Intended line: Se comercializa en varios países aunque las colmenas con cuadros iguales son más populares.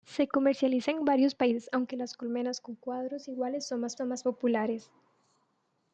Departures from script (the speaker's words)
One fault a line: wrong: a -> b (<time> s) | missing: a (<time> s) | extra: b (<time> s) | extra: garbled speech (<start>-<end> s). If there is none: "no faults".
extra: son más (3.9 s)